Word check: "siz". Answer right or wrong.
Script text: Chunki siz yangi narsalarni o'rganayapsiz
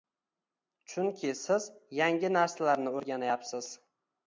right